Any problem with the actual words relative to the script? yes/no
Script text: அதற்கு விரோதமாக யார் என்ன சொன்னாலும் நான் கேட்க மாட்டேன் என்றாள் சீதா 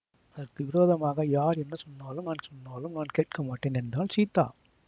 yes